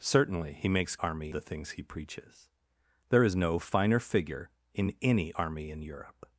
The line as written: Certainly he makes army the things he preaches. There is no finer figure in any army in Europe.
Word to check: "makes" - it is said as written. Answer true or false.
true